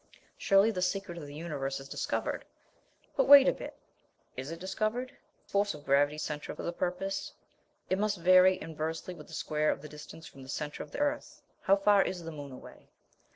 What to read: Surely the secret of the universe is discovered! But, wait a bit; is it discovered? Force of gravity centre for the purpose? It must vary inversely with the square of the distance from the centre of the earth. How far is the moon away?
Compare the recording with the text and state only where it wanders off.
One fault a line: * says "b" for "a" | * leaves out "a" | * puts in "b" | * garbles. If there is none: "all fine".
all fine